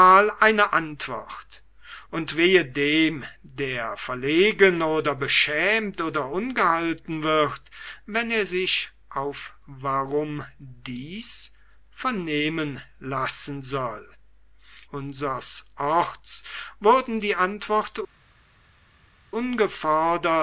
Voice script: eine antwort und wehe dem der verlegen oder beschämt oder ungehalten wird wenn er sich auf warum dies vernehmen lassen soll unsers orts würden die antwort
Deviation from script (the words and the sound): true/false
false